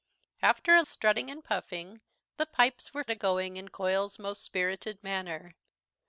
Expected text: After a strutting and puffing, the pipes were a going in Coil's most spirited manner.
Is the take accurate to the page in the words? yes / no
yes